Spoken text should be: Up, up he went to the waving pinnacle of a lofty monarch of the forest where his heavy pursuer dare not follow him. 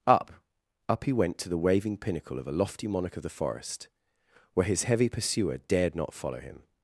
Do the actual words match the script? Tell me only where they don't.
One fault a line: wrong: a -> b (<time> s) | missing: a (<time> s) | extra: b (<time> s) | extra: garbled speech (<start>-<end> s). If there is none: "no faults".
wrong: dare -> dared (5.6 s)